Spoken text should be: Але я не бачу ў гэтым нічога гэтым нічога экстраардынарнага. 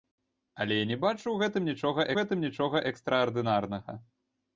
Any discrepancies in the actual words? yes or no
no